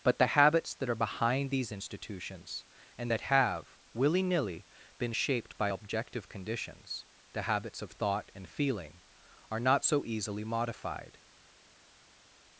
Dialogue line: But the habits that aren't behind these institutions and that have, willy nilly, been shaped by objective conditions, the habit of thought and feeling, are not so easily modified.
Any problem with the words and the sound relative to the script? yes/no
yes